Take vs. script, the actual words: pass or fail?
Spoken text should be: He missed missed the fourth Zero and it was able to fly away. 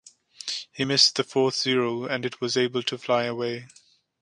fail